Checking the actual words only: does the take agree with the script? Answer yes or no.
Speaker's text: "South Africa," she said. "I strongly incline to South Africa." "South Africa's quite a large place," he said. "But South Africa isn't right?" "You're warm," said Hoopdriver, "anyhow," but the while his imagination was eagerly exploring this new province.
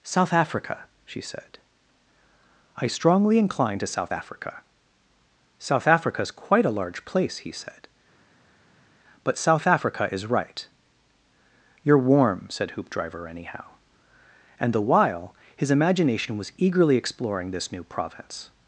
no